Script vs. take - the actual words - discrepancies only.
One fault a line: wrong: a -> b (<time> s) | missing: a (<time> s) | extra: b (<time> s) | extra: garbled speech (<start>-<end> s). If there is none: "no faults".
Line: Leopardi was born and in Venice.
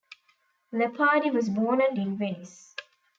no faults